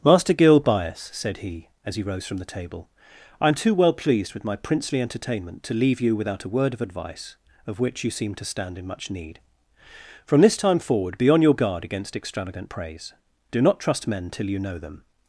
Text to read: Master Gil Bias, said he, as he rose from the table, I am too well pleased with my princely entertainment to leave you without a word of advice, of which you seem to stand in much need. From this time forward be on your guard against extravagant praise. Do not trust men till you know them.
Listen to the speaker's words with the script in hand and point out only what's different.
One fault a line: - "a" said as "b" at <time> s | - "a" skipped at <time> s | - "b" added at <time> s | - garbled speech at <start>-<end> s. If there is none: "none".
none